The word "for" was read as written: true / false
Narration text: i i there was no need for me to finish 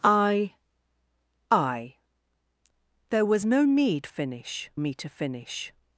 false